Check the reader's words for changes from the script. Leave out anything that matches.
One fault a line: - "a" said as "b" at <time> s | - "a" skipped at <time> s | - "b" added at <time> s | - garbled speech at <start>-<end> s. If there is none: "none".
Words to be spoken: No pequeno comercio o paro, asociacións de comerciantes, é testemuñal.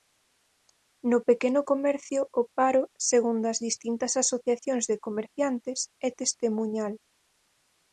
- "segundo as distintas" added at 3.1 s